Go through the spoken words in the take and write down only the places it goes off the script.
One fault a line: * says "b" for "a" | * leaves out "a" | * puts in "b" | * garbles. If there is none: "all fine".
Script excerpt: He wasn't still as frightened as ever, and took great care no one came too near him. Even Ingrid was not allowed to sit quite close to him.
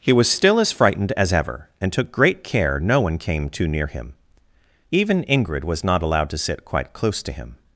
* says "was" for "wasn't"